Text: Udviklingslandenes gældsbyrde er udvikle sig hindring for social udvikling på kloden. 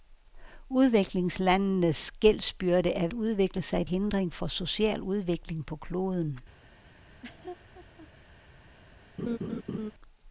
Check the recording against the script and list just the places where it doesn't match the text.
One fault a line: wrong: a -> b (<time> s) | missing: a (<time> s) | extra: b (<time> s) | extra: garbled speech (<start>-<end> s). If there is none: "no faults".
no faults